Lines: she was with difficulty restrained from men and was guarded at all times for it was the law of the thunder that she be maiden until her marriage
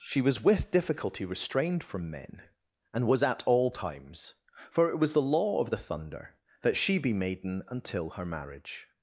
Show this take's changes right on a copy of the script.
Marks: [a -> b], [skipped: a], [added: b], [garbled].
she was with difficulty restrained from men and was [skipped: guarded] at all times for it was the law of the thunder that she be maiden until her marriage